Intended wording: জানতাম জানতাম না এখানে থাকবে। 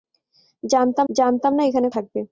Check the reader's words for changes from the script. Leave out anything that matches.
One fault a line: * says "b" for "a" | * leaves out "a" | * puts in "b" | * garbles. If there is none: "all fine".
all fine